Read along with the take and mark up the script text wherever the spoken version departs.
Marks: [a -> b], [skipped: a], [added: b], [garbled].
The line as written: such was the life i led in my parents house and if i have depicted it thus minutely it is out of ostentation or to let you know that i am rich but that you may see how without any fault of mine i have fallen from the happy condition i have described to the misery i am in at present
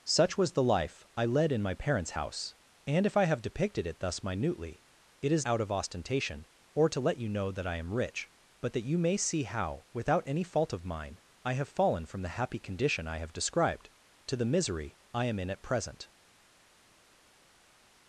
such was the life i led in my parents house and if i have depicted it thus minutely it is out of ostentation or to let you know that i am rich but that you may see how without any fault of mine i have fallen from the happy condition i have described to the misery i am in at present